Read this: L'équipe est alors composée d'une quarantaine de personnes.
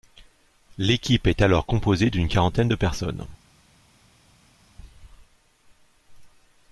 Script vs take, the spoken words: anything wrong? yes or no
no